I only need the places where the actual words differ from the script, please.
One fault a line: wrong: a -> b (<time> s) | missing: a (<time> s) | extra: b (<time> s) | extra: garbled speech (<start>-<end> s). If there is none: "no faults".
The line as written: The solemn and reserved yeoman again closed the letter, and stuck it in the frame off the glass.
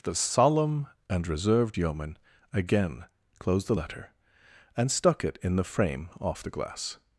no faults